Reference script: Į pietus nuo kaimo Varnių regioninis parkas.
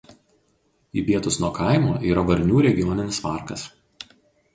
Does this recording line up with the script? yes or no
no